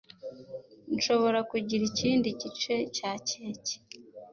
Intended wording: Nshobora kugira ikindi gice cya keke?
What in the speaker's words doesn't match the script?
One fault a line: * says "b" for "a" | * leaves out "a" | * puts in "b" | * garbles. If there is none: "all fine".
all fine